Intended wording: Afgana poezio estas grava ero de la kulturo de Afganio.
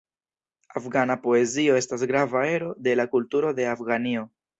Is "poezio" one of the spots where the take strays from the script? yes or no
no